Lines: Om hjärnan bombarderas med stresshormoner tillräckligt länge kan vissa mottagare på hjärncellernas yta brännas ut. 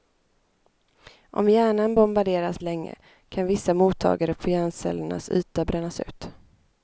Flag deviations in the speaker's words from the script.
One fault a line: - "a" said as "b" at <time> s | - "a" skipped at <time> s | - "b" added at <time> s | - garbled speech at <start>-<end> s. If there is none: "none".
- "med stresshormoner tillräckligt" skipped at 2.6 s